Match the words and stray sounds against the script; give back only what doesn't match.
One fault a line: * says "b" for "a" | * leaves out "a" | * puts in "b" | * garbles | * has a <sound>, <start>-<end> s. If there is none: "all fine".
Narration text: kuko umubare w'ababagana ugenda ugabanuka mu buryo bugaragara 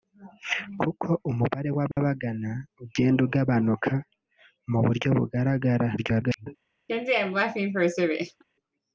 * has a dropout, 1.9-2.0 s
* garbles
* has a laugh, 6.9-8.4 s